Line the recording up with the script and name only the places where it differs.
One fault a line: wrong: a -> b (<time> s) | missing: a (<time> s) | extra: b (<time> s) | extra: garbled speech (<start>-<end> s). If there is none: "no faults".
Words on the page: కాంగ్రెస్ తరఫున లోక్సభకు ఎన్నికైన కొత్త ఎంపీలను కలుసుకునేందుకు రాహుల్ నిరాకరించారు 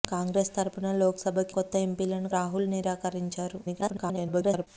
missing: ఎన్నికైన (1.5 s)
missing: కలుసుకునేందుకు (2.3 s)
extra: garbled speech (3.6-4.7 s)